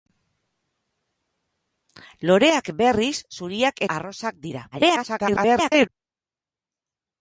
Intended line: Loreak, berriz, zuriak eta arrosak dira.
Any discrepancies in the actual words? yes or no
yes